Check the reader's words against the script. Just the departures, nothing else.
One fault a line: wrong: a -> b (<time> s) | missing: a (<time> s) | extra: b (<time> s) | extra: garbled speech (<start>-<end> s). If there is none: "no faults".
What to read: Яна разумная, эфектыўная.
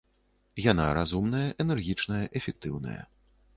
extra: энергічная (1.7 s)